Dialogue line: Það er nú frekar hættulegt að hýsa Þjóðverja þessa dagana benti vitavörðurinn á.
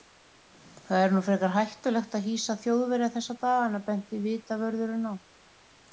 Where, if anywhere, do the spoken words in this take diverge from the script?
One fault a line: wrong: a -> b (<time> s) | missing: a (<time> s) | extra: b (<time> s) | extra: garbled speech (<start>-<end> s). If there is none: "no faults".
no faults